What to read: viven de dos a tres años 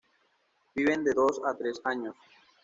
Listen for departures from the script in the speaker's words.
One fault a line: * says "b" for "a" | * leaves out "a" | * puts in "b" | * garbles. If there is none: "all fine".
all fine